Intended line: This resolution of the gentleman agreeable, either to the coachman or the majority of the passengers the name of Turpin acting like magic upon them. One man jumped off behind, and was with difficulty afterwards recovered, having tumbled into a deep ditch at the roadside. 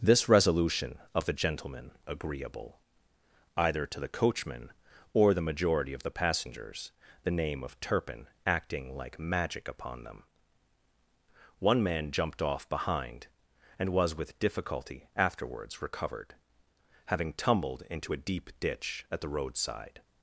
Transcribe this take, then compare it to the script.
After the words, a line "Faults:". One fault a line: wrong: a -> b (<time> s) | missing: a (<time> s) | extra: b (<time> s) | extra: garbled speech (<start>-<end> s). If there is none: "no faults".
This resolution of the gentleman agreeable, either to the coachman or the majority of the passengers the name of Turpin acting like magic upon them. One man jumped off behind, and was with difficulty afterwards recovered, having tumbled into a deep ditch at the roadside.
Faults:
no faults